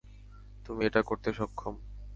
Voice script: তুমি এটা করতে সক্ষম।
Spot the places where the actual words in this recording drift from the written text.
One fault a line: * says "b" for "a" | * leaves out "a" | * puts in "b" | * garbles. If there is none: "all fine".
all fine